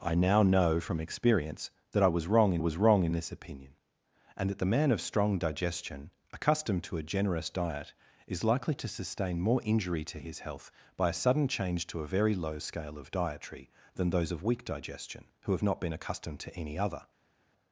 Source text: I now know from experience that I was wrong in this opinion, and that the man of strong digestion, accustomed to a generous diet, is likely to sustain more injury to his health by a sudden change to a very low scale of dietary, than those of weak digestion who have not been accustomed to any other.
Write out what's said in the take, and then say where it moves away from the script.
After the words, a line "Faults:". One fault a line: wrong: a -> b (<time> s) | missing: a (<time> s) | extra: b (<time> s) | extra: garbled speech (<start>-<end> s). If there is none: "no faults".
I now know from experience that I was wrong in was wrong in this opinion, and that the man of strong digestion, accustomed to a generous diet, is likely to sustain more injury to his health by a sudden change to a very low scale of dietary, than those of weak digestion who have not been accustomed to any other.
Faults:
extra: was wrong in (2.6 s)